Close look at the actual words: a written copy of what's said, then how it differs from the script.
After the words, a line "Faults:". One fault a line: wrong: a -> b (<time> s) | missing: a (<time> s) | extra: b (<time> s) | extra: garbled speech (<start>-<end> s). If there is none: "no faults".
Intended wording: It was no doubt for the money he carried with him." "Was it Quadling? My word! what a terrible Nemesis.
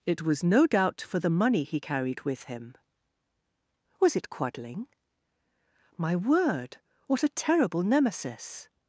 It was no doubt for the money he carried with him." "Was it Quadling? My word! what a terrible Nemesis.
Faults:
no faults